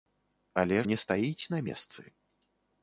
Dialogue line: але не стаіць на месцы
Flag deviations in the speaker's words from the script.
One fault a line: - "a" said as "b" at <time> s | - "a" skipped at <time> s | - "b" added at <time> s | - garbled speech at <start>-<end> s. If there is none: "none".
none